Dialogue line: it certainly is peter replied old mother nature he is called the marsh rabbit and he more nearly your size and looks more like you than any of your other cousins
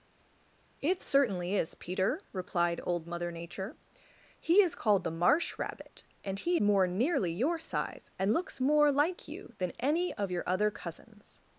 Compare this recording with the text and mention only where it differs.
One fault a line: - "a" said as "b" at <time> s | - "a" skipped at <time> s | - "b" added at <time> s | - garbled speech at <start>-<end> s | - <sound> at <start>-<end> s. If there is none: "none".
none